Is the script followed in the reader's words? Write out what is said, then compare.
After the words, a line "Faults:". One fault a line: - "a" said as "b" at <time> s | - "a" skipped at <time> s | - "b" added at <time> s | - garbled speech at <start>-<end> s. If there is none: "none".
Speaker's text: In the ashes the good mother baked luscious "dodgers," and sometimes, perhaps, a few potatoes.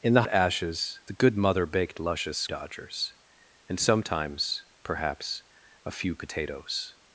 In the ashes the good mother baked luscious "dodgers," and sometimes, perhaps, a few potatoes.
Faults:
none